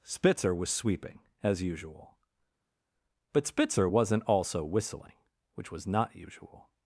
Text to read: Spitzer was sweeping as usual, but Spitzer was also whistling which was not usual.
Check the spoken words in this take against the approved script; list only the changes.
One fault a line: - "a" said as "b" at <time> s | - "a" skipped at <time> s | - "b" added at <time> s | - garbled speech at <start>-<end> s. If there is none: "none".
- "was" said as "wasn't" at 3.8 s